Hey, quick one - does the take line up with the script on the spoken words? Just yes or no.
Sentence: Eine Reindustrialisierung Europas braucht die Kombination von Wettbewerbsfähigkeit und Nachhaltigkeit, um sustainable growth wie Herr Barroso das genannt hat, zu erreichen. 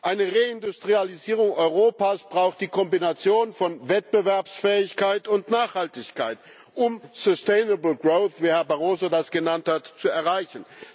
yes